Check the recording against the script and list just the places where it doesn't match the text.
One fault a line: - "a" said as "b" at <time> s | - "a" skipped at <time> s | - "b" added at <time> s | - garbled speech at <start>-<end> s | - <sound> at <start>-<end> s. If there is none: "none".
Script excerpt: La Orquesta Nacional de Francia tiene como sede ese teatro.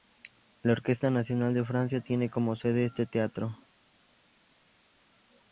- "ese" said as "este" at 2.9 s